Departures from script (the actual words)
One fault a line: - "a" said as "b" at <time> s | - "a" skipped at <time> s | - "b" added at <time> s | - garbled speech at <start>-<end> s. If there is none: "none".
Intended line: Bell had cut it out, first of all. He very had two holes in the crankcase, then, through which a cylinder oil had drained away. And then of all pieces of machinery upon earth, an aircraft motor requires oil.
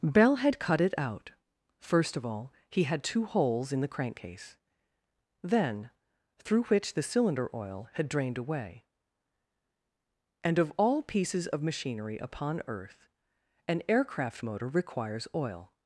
- "very" skipped at 2.8 s
- "a" said as "the" at 6.9 s
- "then" skipped at 10.6 s